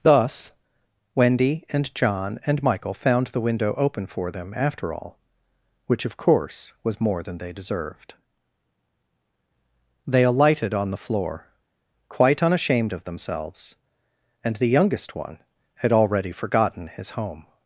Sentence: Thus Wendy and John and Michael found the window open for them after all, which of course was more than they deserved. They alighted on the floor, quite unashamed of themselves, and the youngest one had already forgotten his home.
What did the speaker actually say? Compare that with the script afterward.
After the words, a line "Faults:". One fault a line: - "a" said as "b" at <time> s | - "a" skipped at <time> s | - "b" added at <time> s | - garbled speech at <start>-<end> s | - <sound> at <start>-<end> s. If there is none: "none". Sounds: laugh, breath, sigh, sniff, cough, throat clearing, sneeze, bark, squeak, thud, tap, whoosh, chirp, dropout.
Thus Wendy and John and Michael found the window open for them after all, which of course was more than they deserved. They alighted on the floor, quite unashamed of themselves, and the youngest one had already forgotten his home.
Faults:
none